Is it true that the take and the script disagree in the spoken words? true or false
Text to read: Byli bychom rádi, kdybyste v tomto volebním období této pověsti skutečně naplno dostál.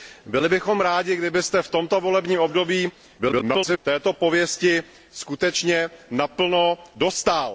true